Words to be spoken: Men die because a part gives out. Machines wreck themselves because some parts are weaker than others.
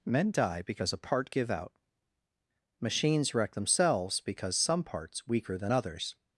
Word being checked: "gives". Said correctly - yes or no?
no